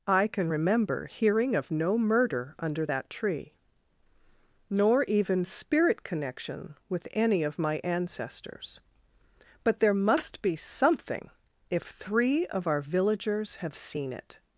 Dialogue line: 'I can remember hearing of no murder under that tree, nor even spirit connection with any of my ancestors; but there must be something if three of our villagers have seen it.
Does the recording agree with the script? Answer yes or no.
yes